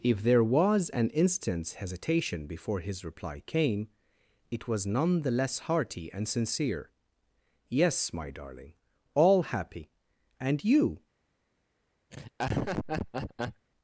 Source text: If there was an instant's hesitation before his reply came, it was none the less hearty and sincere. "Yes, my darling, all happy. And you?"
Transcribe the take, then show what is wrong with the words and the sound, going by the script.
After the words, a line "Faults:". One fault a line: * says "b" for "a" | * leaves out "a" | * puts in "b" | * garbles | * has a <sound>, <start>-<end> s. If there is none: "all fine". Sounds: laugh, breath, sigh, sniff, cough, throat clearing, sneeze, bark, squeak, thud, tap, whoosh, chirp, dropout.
If there was an instant's hesitation before his reply came, it was none the less hearty and sincere. "Yes, my darling, all happy. And you?"
Faults:
* has a laugh, 12.1-13.7 s